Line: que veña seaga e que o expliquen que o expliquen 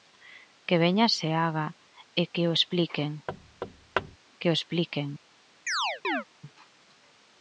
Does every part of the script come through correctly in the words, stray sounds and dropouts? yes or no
no